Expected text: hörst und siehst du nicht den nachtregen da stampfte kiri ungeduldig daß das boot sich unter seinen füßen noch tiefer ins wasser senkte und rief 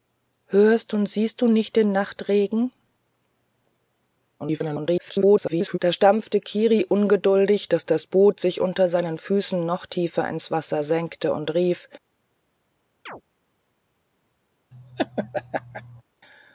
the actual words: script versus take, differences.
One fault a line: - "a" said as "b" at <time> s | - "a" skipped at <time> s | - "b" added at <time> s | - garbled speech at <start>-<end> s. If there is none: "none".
- garbled speech at 4.4-5.8 s